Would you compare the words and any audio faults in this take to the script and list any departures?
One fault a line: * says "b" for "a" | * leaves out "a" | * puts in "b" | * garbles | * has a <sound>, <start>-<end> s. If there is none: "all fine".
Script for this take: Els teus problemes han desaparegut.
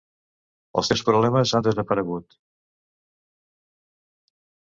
all fine